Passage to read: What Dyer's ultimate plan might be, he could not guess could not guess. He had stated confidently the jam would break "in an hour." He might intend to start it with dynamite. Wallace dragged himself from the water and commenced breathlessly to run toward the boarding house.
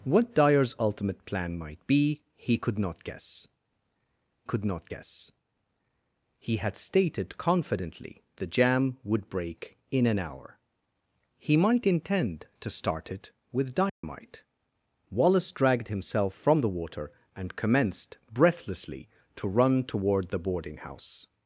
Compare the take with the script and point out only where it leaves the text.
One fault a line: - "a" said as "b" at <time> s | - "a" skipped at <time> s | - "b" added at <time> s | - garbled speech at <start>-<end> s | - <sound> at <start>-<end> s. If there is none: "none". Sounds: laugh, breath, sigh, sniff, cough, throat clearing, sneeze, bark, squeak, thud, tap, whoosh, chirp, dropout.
- dropout at 13.9-14.0 s